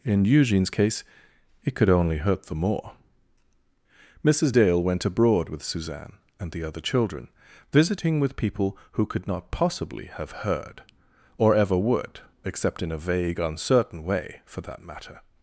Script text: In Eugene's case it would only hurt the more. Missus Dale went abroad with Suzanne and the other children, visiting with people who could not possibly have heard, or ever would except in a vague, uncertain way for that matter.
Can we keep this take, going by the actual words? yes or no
no